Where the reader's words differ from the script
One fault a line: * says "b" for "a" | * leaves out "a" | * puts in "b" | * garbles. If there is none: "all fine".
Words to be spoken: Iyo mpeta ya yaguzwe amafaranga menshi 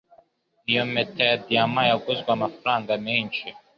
* puts in "diyama"